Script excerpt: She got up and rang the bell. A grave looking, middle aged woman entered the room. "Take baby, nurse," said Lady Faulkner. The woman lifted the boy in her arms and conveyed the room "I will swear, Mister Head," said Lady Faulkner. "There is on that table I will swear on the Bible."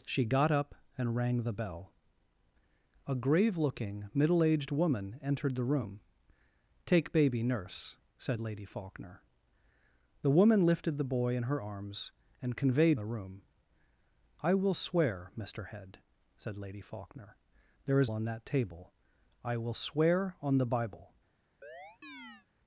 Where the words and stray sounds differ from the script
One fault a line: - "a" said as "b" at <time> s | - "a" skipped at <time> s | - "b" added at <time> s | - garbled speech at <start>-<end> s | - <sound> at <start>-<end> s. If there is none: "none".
- chirp at 21.6-22.5 s